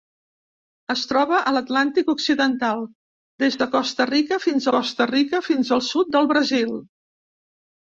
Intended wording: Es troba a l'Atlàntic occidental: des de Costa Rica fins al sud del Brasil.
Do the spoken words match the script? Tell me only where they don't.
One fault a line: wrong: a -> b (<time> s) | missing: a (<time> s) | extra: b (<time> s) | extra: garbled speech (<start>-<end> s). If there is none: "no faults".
extra: Costa Rica fins (4.7 s)